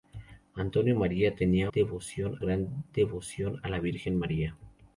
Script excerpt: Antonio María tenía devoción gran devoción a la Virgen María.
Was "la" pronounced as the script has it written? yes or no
yes